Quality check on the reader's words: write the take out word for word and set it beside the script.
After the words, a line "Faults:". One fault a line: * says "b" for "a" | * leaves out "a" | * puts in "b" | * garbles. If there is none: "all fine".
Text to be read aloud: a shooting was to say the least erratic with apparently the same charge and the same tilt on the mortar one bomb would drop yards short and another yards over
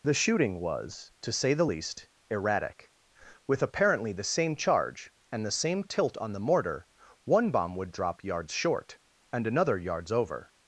the shooting was to say the least erratic with apparently the same charge and the same tilt on the mortar one bomb would drop yards short and another yards over
Faults:
* says "the" for "a"